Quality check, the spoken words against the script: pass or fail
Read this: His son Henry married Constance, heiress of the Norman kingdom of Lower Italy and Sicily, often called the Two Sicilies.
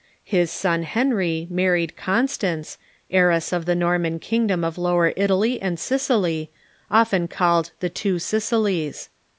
pass